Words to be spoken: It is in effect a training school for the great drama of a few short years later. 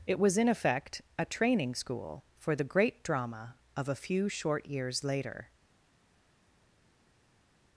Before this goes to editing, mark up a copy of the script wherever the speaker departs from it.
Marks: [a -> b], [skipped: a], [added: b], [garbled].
It [is -> was] in effect a training school for the great drama of a few short years later.